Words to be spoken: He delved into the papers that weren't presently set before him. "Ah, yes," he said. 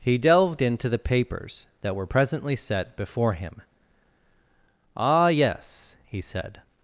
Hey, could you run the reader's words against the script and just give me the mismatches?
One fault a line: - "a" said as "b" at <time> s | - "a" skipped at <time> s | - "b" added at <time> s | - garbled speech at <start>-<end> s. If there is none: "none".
- "weren't" said as "were" at 1.9 s